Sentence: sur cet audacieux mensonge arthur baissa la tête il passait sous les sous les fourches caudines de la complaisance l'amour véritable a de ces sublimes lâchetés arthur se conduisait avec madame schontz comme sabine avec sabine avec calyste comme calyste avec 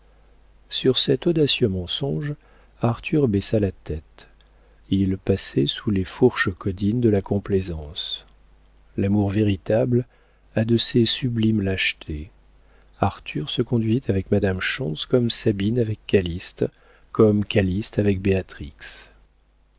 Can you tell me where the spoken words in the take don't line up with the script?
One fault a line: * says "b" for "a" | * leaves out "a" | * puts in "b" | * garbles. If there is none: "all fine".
* leaves out "sous les"
* leaves out "sabine avec"